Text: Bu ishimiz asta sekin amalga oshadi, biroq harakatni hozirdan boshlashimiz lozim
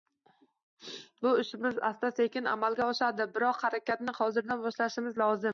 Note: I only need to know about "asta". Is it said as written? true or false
true